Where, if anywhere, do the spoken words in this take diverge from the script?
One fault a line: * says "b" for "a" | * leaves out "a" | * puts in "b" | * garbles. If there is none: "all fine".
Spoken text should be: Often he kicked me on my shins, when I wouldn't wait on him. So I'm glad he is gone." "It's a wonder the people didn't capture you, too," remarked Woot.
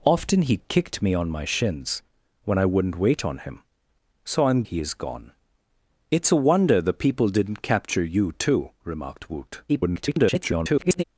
* leaves out "glad"
* garbles